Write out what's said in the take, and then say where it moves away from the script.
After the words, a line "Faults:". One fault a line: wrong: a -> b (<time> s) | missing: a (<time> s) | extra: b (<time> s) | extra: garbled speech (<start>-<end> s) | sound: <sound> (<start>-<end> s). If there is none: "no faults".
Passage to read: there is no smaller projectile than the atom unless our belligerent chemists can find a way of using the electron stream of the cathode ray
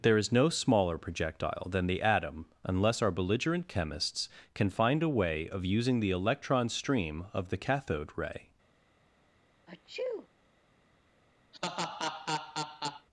there is no smaller projectile than the atom unless our belligerent chemists can find a way of using the electron stream of the cathode ray
Faults:
sound: sneeze (9.7-10.3 s)
sound: laugh (11.5-13.1 s)